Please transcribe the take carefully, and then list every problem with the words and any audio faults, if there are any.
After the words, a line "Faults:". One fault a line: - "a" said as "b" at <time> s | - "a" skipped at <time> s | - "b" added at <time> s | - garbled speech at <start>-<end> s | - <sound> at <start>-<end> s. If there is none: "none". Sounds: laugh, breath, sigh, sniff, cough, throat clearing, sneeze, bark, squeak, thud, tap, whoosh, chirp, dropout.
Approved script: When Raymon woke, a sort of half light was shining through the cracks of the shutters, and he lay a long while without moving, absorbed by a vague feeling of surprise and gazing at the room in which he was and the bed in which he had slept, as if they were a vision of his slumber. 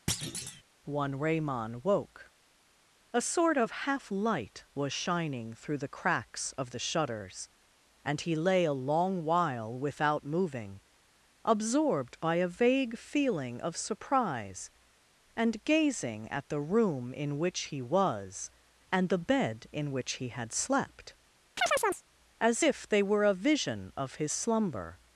One Raymon woke, a sort of half light was shining through the cracks of the shutters, and he lay a long while without moving, absorbed by a vague feeling of surprise and gazing at the room in which he was and the bed in which he had slept, as if they were a vision of his slumber.
Faults:
- thud at 0.1-0.6 s
- "When" said as "One" at 0.8 s
- chirp at 21.6-22.0 s